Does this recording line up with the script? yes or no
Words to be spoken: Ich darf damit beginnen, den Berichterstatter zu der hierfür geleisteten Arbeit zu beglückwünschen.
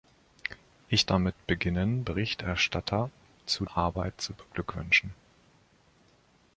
no